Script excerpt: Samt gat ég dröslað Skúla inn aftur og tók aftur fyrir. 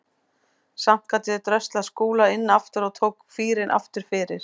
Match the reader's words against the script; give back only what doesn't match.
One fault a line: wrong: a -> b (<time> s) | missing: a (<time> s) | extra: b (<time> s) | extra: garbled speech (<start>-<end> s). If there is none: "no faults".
extra: fýrinn (3.4 s)